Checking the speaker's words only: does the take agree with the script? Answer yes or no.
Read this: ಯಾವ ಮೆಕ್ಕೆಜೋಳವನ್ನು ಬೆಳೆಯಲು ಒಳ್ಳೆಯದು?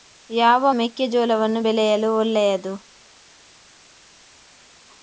yes